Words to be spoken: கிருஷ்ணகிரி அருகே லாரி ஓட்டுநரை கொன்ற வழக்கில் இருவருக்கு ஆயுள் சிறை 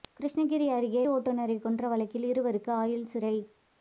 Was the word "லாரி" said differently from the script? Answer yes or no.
yes